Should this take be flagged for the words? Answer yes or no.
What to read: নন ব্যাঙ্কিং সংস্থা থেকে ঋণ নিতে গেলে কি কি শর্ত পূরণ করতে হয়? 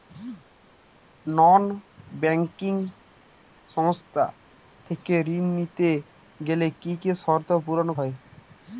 yes